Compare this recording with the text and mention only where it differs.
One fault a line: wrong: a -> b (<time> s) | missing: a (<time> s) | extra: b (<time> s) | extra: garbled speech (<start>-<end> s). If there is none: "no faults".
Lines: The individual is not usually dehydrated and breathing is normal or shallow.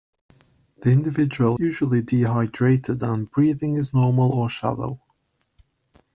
missing: is not (1.6 s)